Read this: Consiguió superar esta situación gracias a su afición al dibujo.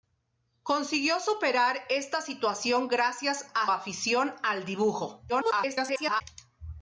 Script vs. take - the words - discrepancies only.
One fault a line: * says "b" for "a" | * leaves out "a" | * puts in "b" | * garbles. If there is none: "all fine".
* leaves out "su"
* garbles